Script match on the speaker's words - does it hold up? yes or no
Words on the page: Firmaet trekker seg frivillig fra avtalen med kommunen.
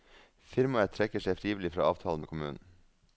yes